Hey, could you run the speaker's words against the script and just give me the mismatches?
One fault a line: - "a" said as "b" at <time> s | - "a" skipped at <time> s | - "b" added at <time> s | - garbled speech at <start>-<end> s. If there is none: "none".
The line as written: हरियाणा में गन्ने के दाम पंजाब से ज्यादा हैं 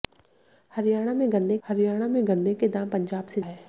- "हरियाणा में गन्ने" added at 1.6 s
- "ज्यादा" skipped at 3.4 s